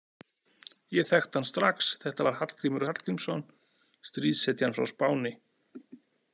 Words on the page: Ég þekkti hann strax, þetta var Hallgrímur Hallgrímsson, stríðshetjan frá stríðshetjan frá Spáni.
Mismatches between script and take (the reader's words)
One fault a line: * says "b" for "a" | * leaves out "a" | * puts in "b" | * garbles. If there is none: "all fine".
* leaves out "stríðshetjan frá"